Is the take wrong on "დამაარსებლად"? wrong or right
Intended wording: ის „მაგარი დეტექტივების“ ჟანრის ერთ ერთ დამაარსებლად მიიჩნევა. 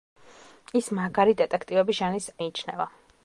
wrong